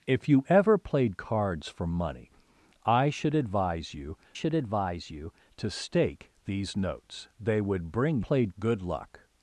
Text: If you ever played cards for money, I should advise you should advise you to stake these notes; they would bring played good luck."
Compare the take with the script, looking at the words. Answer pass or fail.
pass